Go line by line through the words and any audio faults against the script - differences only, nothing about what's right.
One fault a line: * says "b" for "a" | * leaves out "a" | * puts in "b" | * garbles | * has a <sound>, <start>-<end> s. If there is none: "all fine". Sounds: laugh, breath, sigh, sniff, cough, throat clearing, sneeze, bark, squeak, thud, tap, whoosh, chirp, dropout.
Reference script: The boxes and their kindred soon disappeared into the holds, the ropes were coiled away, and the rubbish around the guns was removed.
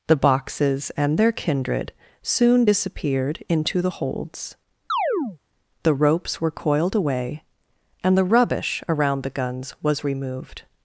* has a chirp, 4.9-5.4 s